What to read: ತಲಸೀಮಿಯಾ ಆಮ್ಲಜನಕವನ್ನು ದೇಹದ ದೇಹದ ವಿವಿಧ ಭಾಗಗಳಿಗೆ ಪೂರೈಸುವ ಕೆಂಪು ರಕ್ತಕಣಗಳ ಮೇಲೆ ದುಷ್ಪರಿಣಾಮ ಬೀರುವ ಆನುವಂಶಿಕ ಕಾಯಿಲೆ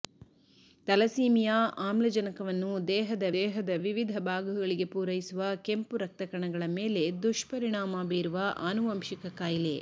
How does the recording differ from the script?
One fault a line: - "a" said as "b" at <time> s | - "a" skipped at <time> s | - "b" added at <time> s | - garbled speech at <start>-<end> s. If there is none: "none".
none